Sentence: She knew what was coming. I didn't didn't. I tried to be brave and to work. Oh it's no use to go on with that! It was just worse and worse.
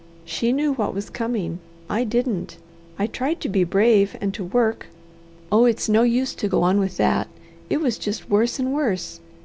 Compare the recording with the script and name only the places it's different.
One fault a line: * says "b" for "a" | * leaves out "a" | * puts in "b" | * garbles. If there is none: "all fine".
* leaves out "didn't"